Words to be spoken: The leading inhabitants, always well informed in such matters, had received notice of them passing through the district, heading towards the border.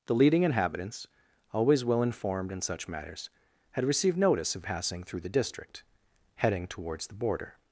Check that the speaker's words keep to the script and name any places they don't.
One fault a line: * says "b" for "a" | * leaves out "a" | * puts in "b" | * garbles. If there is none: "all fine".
* leaves out "them"